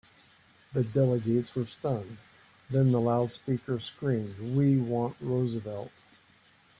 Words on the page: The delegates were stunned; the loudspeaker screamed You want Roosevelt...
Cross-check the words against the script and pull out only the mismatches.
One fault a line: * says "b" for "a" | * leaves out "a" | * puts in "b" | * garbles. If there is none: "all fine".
* puts in "then"
* says "We" for "You"